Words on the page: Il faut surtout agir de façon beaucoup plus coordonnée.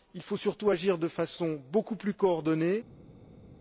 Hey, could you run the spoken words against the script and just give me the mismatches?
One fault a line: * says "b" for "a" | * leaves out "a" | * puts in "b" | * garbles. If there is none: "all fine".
all fine